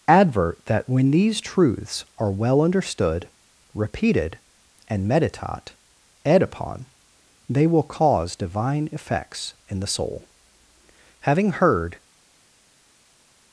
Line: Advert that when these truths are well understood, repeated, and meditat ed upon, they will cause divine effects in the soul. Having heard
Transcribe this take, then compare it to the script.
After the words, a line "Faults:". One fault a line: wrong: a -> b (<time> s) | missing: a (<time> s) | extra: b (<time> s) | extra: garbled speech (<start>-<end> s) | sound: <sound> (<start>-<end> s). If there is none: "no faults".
Advert that when these truths are well understood, repeated, and meditat ed upon, they will cause divine effects in the soul. Having heard
Faults:
no faults